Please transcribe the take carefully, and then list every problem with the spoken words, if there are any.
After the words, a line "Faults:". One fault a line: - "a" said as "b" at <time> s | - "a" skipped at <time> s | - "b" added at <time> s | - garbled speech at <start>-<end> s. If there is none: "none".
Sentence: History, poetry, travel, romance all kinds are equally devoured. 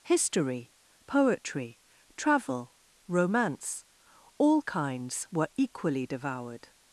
History, poetry, travel, romance all kinds were equally devoured.
Faults:
- "are" said as "were" at 5.3 s